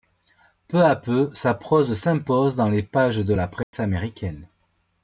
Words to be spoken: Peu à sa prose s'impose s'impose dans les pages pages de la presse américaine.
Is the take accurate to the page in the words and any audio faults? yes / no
no